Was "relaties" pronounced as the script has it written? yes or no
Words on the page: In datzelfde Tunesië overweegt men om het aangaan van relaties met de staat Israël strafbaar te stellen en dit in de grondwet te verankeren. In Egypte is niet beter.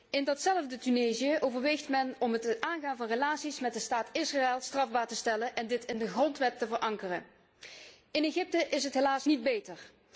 yes